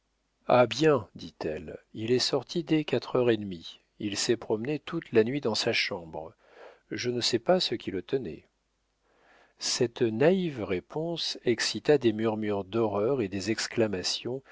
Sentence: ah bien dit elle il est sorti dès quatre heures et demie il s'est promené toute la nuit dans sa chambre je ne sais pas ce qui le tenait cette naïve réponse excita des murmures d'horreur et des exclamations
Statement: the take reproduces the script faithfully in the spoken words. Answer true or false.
true